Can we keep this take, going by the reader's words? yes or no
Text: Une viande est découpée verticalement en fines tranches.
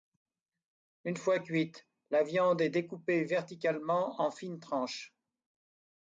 no